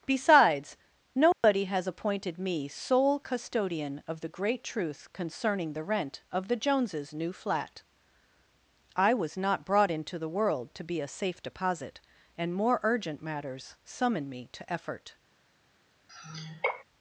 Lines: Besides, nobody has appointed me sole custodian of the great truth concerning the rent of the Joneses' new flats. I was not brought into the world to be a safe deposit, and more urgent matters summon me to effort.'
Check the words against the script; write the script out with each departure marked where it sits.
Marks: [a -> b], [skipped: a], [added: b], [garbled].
Besides, nobody has appointed me sole custodian of the great truth concerning the rent of the Joneses' new [flats. -> flat] I was not brought into the world to be a safe deposit, and more urgent matters summon me to effort.'